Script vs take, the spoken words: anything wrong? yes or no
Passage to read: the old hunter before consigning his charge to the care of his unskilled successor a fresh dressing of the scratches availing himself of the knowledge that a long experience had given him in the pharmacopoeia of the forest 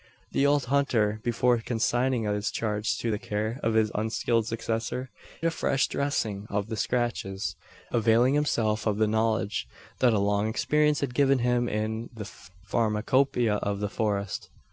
no